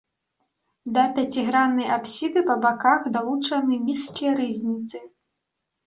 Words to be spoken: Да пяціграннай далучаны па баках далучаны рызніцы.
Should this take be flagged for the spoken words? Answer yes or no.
yes